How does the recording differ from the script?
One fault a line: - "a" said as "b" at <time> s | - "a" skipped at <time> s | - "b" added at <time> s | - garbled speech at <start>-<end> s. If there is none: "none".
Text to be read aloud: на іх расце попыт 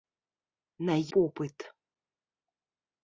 - "іх расце" skipped at 0.9 s